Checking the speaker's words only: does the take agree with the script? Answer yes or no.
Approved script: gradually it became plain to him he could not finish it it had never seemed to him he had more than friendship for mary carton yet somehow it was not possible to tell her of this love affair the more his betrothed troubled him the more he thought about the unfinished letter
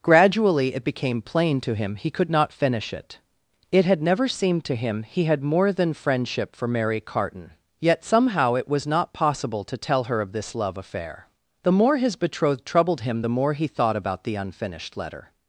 yes